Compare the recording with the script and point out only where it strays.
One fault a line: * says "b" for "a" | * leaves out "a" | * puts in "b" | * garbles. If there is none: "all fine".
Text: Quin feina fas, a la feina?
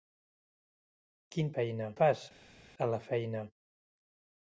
all fine